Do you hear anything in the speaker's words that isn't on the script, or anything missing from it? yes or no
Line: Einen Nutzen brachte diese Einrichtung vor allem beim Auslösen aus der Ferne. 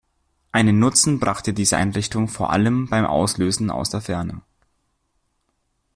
no